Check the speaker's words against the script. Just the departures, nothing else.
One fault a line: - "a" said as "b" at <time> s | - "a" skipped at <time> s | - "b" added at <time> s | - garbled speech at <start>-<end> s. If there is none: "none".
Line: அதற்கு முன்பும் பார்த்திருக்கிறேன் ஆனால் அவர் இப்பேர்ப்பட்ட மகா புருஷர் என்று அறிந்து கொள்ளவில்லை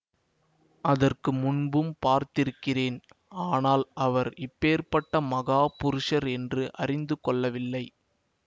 none